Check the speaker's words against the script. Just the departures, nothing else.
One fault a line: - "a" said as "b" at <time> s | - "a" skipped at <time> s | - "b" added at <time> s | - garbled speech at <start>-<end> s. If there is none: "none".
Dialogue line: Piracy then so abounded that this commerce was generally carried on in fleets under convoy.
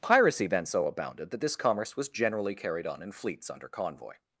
none